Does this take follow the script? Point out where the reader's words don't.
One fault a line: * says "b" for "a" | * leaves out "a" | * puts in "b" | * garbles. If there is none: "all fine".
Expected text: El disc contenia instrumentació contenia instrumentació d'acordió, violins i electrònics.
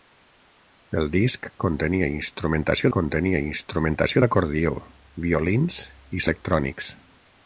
all fine